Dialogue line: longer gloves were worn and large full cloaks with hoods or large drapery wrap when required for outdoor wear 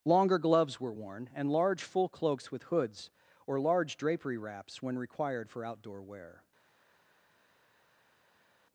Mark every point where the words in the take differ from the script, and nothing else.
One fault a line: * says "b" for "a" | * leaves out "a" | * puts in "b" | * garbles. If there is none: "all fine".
* says "wraps" for "wrap"